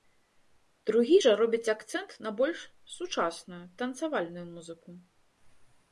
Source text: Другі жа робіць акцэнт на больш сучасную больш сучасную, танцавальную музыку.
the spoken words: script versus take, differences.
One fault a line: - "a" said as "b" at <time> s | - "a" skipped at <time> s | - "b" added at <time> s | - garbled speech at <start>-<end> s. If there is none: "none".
- "больш сучасную" skipped at 3.6 s